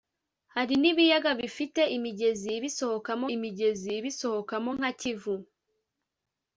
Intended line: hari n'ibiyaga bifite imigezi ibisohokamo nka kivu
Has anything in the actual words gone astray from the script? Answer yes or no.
yes